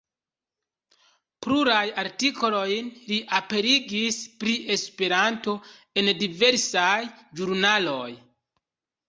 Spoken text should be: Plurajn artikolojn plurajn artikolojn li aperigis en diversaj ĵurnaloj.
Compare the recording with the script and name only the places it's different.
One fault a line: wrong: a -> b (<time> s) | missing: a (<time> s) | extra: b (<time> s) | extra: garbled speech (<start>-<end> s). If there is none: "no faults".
wrong: plurajn artikolojn li aperigis -> li aperigis pri Esperanto (3.1 s)